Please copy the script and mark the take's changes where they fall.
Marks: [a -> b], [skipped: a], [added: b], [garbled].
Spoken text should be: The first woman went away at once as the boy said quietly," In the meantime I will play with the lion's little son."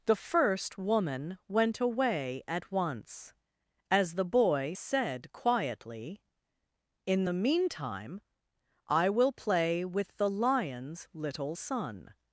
The first woman went away at once as the boy said quietly," In the meantime I will play with the lion's little son."